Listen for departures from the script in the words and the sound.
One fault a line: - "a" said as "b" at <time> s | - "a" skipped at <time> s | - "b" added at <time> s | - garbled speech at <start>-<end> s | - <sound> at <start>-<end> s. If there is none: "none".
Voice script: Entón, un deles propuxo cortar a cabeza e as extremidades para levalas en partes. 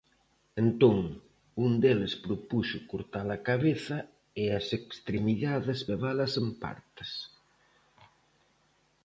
- "para" skipped at 5.8 s